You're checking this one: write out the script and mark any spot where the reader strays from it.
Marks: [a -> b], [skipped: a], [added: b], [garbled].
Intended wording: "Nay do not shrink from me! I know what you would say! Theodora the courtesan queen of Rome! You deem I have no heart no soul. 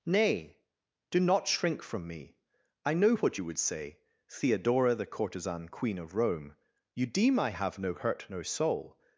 "Nay do not shrink from me! I know what you would say! Theodora the courtesan queen of Rome! You deem I have no [heart -> hurt] no soul.